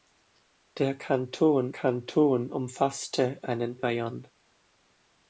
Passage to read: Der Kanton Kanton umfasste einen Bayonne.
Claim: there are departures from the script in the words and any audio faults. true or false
false